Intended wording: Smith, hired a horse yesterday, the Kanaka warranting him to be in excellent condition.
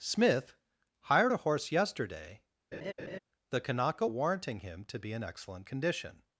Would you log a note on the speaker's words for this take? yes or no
no